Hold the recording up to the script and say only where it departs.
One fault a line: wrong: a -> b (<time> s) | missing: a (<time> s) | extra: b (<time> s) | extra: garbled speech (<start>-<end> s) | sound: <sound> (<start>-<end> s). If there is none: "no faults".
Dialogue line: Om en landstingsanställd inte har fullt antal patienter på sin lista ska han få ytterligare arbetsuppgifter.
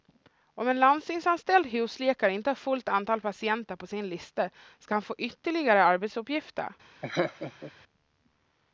extra: husläkare (1.6 s)
sound: laugh (7.0-7.7 s)